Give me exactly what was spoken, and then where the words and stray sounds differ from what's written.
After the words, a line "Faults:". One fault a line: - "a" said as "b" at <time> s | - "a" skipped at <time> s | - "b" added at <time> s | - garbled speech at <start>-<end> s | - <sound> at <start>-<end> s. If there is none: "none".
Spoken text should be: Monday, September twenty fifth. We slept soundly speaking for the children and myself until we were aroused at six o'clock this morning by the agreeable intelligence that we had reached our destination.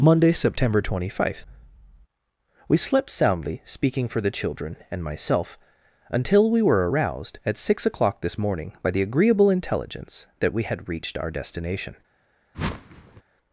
Monday, September twenty fifth. We slept soundly speaking for the children and myself until we were aroused at six o'clock this morning by the agreeable intelligence that we had reached our destination.
Faults:
- whoosh at 12.5-13.2 s